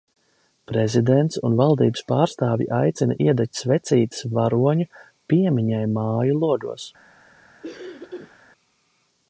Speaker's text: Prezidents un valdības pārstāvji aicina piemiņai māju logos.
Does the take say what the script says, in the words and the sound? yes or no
no